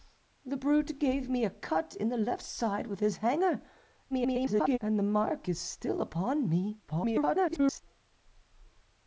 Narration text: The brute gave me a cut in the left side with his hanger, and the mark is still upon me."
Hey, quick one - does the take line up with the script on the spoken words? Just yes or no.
no